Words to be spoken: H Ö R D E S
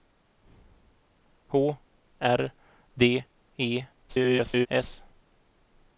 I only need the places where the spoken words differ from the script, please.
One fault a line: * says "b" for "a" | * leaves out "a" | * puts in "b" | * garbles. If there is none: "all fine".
* leaves out "Ö"
* garbles